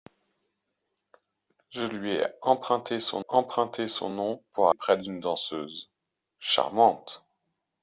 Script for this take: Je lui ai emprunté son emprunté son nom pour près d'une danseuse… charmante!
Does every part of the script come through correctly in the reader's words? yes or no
yes